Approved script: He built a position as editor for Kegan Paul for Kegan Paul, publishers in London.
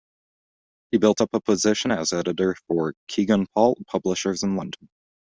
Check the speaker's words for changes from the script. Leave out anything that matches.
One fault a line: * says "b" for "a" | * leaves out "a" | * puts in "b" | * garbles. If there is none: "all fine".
* puts in "up"
* leaves out "for Kegan Paul"